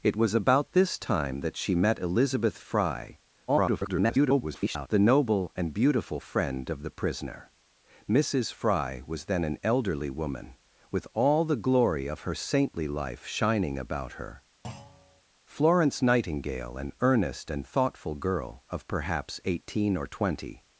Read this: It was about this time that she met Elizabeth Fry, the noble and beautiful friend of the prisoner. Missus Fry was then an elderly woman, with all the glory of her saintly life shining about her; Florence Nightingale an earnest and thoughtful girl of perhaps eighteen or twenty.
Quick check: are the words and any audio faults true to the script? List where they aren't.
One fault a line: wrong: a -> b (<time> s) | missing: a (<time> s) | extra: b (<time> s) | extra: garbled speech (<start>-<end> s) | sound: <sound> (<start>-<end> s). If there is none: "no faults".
extra: garbled speech (3.5-4.9 s)
sound: thud (14.6-15.2 s)